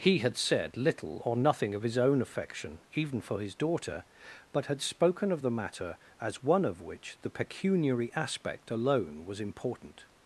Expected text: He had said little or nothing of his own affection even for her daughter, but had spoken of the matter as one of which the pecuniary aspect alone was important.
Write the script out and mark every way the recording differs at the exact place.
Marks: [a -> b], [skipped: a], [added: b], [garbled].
He had said little or nothing of his own affection even for [her -> his] daughter, but had spoken of the matter as one of which the pecuniary aspect alone was important.